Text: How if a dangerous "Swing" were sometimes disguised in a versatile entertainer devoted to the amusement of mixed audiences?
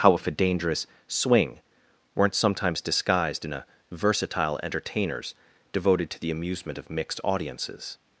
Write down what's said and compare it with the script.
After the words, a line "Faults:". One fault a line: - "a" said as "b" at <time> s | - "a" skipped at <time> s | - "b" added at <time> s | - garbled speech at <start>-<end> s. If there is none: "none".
How if a dangerous "Swing" weren't sometimes disguised in a versatile entertainers devoted to the amusement of mixed audiences?
Faults:
- "were" said as "weren't" at 2.1 s
- "entertainer" said as "entertainers" at 4.6 s